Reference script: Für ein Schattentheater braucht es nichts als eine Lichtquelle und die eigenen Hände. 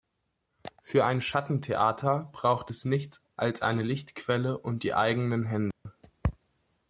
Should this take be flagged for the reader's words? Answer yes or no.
no